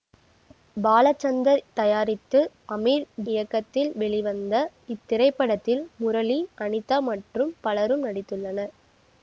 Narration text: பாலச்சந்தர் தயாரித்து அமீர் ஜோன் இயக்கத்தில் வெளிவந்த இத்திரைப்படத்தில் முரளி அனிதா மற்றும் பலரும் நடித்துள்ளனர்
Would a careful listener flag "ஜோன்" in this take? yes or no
yes